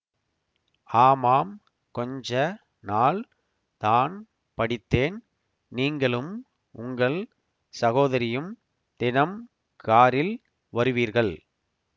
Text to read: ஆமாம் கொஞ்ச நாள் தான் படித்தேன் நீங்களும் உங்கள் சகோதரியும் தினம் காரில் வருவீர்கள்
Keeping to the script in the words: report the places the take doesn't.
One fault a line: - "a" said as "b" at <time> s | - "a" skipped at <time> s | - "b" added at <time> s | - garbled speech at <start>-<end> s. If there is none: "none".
none